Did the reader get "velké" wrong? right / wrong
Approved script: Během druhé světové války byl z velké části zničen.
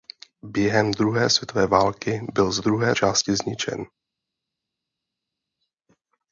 wrong